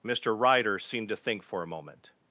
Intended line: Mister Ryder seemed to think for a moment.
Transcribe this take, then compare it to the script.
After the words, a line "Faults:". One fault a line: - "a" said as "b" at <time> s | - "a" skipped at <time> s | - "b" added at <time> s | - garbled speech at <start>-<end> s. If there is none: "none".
Mister Ryder seemed to think for a moment.
Faults:
none